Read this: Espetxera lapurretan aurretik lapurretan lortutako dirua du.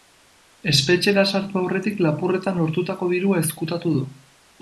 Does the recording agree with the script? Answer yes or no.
no